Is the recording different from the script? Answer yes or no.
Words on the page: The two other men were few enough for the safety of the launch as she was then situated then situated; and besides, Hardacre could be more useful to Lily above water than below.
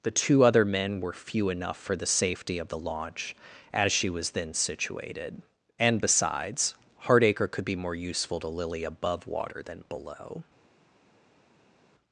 yes